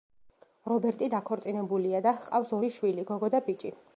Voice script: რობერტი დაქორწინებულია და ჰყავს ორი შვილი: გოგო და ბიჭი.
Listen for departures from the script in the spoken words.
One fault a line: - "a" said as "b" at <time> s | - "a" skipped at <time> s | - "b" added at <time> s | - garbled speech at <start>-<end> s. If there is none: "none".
none